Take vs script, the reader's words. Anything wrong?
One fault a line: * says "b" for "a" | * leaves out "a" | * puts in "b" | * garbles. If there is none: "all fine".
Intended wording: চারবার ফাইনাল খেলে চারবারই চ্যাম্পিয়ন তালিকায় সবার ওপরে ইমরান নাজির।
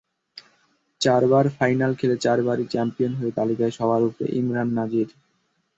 * puts in "হয়ে"